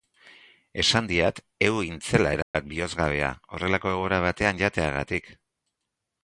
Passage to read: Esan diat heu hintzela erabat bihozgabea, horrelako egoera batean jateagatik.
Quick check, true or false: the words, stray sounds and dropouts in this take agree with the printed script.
false